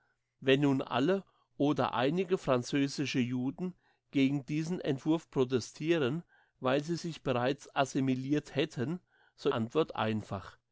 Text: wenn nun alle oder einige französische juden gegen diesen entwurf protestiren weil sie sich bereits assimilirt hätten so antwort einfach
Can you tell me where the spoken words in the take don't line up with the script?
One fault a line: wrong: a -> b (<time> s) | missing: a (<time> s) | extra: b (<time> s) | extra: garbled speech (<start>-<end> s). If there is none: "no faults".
no faults